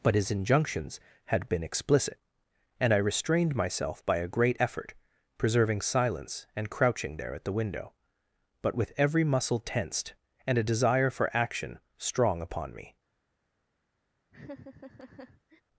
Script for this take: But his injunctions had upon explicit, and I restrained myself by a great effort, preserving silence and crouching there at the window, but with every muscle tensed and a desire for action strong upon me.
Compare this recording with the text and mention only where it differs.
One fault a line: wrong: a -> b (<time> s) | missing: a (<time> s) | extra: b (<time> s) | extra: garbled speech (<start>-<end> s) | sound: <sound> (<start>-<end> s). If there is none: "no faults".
wrong: upon -> been (1.5 s)
sound: laugh (14.3-15.6 s)